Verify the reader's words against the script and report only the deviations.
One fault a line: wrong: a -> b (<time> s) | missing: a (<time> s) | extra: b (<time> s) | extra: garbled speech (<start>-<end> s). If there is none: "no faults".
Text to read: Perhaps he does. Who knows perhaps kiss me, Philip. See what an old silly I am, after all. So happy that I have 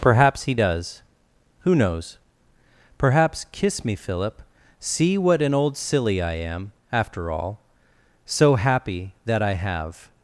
no faults